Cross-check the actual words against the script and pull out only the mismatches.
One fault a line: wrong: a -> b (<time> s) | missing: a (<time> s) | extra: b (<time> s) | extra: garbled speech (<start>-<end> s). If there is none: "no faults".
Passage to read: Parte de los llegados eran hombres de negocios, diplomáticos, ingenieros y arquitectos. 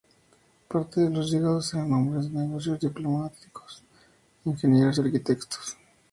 no faults